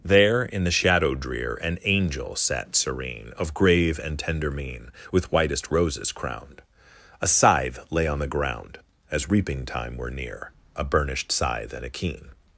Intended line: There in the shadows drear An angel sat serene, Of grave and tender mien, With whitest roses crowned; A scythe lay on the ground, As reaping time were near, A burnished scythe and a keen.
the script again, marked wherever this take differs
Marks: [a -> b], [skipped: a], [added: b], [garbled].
There in the [shadows -> shadow] drear An angel sat serene, Of grave and tender mien, With whitest roses crowned; A scythe lay on the ground, As reaping time were near, A burnished scythe and a keen.